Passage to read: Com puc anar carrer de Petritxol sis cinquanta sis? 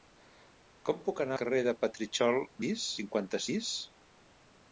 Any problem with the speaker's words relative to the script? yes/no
no